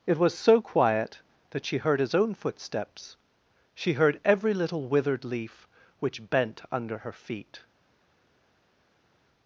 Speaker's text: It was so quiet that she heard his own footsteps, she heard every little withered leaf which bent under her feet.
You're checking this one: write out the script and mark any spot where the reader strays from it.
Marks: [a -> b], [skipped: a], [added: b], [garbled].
It was so quiet that she heard his own footsteps, she heard every little withered leaf which bent under her feet.